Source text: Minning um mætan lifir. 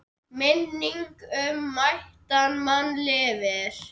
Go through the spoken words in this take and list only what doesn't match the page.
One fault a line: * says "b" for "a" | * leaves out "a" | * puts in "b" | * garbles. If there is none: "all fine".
* puts in "mann"